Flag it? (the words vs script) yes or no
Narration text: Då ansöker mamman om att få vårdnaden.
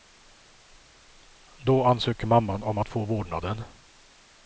no